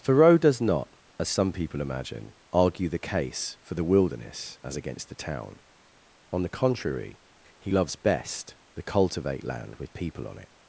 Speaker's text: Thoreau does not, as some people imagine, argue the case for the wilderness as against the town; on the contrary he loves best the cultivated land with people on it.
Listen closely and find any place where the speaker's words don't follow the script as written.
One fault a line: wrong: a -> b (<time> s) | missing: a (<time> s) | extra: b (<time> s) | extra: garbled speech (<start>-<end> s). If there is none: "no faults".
wrong: cultivated -> cultivate (8.8 s)